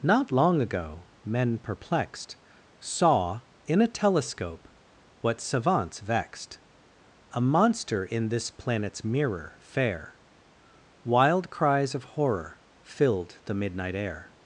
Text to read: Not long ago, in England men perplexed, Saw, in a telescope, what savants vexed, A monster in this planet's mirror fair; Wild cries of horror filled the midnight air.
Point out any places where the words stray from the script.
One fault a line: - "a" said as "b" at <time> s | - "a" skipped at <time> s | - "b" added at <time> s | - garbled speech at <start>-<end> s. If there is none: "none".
- "in England" skipped at 1.0 s